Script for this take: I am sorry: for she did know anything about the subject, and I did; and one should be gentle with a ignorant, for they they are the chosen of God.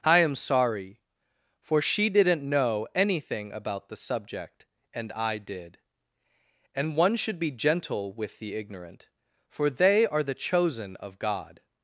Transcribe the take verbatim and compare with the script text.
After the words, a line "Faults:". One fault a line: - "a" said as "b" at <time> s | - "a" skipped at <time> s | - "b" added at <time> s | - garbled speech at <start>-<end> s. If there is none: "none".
I am sorry: for she didn't know anything about the subject, and I did; and one should be gentle with the ignorant, for they are the chosen of God.
Faults:
- "did" said as "didn't" at 2.1 s
- "a" said as "the" at 8.4 s
- "they" skipped at 10.1 s